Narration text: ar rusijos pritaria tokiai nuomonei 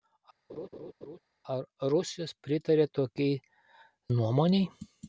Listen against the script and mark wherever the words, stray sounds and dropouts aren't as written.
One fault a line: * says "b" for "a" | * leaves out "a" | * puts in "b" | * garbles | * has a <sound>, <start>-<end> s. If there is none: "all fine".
* has a laugh, 0.5-1.2 s